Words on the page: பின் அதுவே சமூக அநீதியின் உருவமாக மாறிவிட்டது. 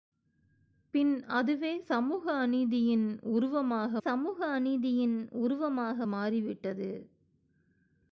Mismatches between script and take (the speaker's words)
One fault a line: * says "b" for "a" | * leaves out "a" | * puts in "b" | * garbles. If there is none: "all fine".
* puts in "சமூக அநீதியின் உருவமாக"